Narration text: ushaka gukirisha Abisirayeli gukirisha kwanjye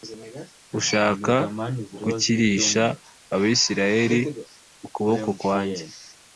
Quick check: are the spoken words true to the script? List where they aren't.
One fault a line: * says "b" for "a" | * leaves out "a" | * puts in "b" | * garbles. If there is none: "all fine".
* says "ukuboko" for "gukirisha"